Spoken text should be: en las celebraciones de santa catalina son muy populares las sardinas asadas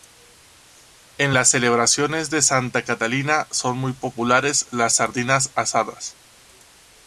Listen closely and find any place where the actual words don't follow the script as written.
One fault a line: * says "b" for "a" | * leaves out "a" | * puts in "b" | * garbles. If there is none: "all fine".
all fine